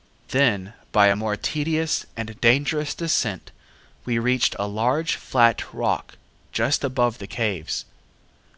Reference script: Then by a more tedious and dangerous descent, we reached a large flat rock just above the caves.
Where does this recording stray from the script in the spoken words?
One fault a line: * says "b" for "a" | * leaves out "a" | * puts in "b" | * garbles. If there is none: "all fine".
all fine